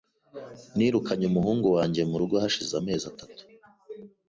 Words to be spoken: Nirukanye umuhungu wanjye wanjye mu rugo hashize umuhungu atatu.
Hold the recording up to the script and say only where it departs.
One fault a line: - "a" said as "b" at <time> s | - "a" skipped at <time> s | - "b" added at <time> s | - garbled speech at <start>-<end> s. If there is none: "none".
- "wanjye" skipped at 2.0 s
- "umuhungu" said as "amezi" at 2.8 s